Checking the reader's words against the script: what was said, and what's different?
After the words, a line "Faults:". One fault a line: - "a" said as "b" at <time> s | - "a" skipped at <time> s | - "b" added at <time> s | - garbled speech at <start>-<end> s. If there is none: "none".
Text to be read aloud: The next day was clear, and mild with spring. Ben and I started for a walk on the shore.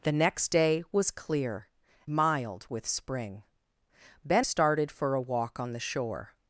The next day was clear, mild with spring. Ben started for a walk on the shore.
Faults:
- "and" skipped at 1.7 s
- "and I" skipped at 4.5 s